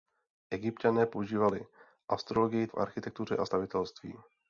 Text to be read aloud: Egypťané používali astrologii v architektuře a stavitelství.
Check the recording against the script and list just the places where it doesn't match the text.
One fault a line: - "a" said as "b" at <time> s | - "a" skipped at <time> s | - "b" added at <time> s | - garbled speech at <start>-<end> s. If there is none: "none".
none